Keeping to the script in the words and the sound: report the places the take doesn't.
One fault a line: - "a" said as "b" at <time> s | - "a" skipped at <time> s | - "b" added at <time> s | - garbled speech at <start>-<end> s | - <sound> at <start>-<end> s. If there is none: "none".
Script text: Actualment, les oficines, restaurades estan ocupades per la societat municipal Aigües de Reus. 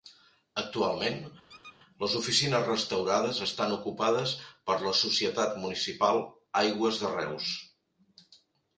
- squeak at 1.5-1.8 s